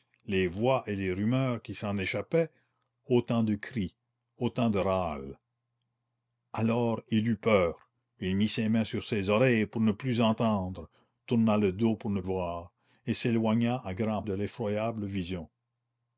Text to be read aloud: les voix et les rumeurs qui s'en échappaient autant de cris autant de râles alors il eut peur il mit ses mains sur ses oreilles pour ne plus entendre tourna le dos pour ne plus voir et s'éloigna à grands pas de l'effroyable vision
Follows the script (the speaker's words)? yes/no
no